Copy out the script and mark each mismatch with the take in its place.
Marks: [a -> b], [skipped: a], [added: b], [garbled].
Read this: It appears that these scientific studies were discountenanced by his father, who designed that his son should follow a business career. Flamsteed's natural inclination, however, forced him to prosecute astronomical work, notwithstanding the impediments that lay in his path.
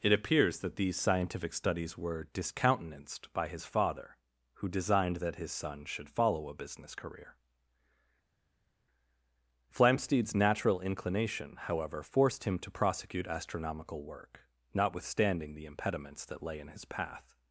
It appears that these scientific studies were discountenanced by his father, who designed that his son should follow a business career. Flamsteed's natural inclination, however, forced him to prosecute astronomical work, notwithstanding the impediments that lay in his path.